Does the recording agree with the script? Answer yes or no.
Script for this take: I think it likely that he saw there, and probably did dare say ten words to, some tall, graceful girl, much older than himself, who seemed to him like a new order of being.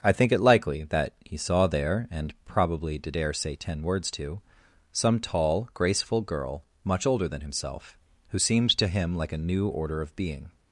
yes